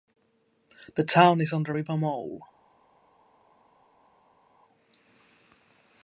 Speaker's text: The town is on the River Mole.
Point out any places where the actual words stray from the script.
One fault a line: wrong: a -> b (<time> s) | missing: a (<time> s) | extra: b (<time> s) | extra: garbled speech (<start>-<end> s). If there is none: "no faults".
no faults